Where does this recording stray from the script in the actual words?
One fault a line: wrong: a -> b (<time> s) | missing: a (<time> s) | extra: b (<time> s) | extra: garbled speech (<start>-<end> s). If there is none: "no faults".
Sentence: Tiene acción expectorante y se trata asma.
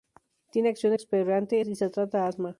no faults